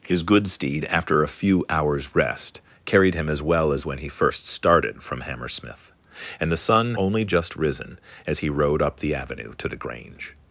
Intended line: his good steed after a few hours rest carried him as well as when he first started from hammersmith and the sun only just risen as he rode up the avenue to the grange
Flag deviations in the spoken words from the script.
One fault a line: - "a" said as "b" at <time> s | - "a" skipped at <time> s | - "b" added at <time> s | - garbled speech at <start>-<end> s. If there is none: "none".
none